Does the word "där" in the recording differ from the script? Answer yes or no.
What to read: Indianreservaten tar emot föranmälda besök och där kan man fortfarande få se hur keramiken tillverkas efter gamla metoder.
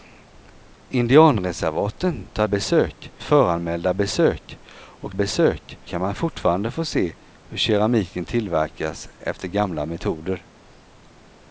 yes